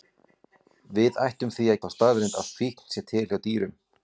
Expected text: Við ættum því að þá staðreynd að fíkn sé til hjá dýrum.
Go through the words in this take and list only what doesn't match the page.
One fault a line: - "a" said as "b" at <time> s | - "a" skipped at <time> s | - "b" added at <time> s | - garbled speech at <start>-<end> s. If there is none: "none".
none